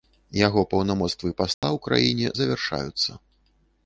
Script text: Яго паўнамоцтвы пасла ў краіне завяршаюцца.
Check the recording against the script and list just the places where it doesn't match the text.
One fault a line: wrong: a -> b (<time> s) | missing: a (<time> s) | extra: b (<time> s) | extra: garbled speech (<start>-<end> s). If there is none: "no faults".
no faults